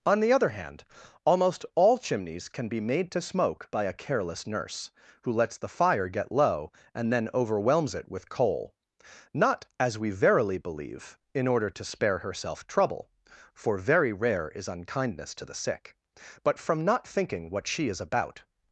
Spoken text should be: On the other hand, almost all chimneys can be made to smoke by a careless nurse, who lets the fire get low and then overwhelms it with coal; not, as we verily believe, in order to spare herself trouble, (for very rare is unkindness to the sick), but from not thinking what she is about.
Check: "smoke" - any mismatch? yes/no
no